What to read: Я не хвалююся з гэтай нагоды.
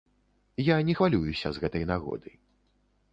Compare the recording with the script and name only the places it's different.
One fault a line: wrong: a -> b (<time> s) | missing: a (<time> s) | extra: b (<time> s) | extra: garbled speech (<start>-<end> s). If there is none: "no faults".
no faults